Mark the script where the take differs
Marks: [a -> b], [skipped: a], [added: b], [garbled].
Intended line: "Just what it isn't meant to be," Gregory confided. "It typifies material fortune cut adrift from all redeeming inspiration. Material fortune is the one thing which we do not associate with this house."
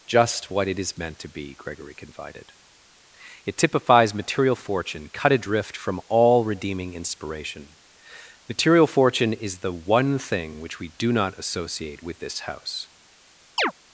"Just what it [isn't -> is] meant to be," Gregory confided. "It typifies material fortune cut adrift from all redeeming inspiration. Material fortune is the one thing which we do not associate with this house."